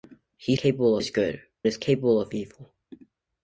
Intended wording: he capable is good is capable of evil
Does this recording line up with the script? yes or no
yes